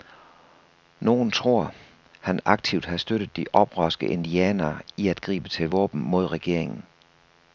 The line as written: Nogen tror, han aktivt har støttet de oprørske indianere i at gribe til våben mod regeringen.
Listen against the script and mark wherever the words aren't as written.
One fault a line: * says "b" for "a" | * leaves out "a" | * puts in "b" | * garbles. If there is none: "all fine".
all fine